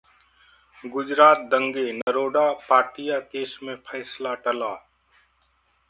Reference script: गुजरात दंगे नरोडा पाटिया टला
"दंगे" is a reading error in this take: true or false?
false